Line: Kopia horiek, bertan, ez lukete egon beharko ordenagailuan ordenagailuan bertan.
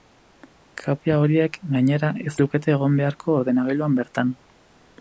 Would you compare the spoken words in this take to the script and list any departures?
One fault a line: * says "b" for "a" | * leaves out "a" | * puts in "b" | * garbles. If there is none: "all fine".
* says "gainera" for "bertan"
* leaves out "ordenagailuan"